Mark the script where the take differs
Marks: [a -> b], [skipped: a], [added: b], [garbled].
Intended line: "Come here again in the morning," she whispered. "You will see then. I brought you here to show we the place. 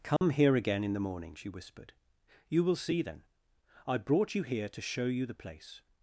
"Come here again in the morning," she whispered. "You will see then. I brought you here to show [we -> you] the place.